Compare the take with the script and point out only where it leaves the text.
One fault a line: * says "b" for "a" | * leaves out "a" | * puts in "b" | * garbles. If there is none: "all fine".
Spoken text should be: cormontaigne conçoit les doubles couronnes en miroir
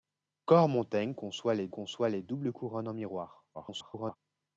* puts in "conçoit les"
* garbles